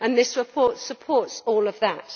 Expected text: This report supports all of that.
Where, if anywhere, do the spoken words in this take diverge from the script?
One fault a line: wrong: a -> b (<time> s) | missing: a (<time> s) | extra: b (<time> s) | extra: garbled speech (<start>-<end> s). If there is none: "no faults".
no faults